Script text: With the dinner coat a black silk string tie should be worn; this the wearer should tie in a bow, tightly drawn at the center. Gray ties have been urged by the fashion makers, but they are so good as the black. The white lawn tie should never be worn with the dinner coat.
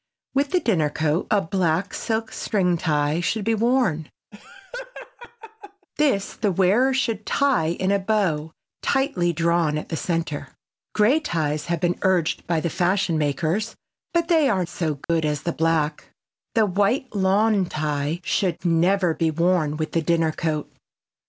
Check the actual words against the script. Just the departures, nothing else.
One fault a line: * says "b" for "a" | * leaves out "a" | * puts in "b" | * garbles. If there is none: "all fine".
all fine